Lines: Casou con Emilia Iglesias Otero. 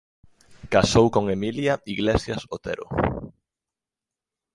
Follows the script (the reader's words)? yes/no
yes